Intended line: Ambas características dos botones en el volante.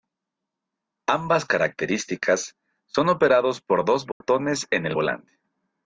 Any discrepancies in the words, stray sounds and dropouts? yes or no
yes